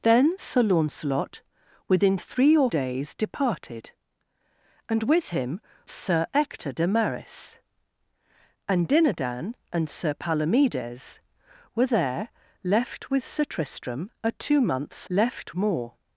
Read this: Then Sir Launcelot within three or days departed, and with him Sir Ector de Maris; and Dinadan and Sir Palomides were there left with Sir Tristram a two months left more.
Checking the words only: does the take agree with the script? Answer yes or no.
yes